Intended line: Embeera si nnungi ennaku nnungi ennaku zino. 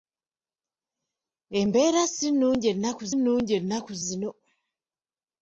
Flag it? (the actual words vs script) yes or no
no